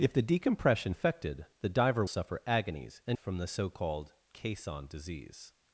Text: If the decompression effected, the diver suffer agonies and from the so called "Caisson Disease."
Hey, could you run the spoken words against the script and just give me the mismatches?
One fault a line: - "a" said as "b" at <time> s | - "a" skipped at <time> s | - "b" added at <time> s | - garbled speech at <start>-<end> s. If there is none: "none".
none